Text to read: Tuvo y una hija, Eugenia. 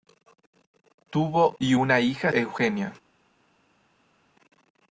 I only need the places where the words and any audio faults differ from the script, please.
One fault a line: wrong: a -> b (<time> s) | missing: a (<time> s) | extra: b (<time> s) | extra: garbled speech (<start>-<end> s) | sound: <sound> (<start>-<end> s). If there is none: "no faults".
no faults